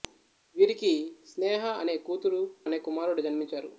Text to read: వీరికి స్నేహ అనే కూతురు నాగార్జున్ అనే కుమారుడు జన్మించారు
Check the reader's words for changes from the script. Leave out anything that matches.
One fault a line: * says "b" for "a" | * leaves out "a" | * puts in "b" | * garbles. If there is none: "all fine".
* leaves out "నాగార్జున్"